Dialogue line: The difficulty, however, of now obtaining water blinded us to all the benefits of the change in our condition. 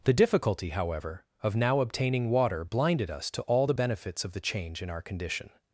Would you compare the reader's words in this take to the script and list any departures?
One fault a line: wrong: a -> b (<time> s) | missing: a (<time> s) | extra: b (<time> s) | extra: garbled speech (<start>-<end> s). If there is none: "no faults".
no faults